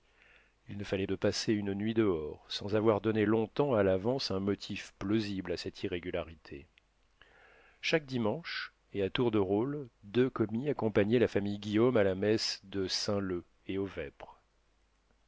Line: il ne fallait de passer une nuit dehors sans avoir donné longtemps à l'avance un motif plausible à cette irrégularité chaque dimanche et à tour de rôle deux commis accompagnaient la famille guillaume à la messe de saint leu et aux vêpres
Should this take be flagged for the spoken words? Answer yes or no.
no